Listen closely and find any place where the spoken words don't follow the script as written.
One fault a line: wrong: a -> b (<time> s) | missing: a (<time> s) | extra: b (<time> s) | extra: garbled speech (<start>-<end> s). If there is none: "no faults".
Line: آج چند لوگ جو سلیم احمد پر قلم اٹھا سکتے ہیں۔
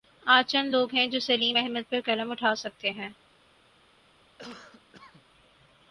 extra: ہیں (0.9 s)